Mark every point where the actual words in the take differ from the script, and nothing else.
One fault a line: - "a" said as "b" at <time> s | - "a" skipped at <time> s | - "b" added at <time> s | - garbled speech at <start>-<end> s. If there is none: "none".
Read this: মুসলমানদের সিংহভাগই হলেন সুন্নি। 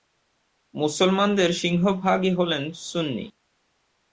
none